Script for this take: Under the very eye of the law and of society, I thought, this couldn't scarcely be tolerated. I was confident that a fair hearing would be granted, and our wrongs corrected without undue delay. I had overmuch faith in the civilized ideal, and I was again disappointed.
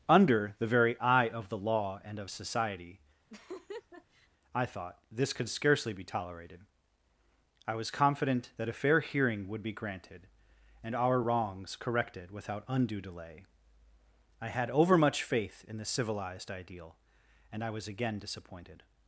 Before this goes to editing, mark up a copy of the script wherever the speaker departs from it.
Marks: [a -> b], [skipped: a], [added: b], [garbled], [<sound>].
Under the very eye of the law and of society, [laugh] I thought, this [couldn't -> could] scarcely be tolerated. I was confident that a fair hearing would be granted, and our wrongs corrected without undue delay. I had overmuch faith in the civilized ideal, and I was again disappointed.